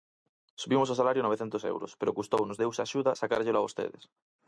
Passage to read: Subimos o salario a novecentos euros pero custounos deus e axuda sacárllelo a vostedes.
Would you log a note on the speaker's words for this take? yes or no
no